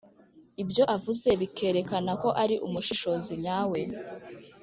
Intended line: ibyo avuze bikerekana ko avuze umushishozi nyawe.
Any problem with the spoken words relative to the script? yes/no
yes